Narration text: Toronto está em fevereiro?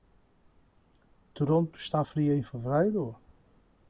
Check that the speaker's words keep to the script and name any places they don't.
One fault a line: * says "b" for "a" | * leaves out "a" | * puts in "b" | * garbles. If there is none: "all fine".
* puts in "fria"